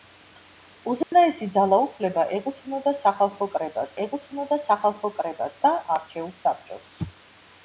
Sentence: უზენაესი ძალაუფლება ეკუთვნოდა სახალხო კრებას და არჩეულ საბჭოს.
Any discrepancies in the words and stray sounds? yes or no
yes